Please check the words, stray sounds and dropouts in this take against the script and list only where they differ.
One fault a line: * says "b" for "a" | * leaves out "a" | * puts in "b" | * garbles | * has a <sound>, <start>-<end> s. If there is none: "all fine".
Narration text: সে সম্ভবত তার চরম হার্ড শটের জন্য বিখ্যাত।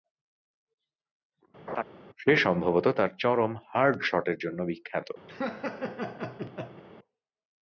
* has a laugh, 1.7-1.8 s
* has a laugh, 5.3-6.8 s